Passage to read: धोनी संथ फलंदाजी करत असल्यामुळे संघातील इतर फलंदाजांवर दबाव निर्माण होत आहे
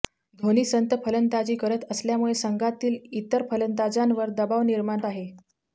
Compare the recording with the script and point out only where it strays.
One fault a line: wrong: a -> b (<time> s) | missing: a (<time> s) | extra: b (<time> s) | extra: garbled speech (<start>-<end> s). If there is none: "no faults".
missing: होत (5.0 s)